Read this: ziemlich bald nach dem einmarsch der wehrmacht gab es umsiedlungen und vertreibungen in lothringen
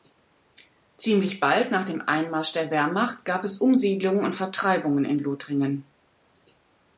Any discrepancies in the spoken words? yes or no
no